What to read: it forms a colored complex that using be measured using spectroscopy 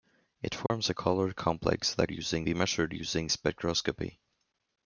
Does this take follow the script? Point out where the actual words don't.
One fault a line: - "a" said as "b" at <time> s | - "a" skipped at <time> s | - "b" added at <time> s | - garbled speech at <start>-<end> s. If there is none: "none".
none